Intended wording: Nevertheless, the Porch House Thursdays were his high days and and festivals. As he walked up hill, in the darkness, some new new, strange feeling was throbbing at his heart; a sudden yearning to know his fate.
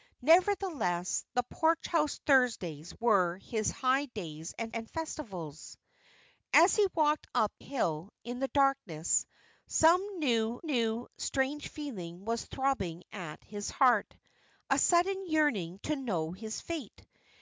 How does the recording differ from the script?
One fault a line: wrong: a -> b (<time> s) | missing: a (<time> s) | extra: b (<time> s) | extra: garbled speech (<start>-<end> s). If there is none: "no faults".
no faults